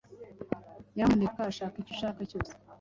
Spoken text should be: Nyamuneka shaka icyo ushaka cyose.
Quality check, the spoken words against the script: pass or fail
pass